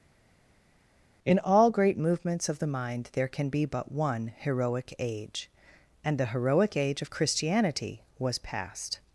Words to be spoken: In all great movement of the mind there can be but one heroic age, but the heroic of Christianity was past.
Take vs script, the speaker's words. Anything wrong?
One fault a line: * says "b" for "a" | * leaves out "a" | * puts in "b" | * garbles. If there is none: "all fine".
* says "movements" for "movement"
* says "and" for "but"
* puts in "age"